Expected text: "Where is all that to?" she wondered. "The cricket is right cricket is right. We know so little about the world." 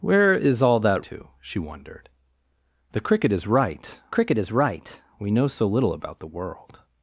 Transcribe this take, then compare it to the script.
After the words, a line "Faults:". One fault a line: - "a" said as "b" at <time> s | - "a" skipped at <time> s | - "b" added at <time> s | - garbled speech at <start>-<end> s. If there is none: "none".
"Where is all that to?" she wondered. "The cricket is right cricket is right. We know so little about the world."
Faults:
none